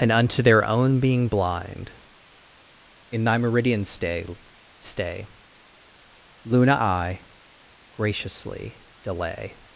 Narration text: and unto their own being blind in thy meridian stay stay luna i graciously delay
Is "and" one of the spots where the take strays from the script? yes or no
no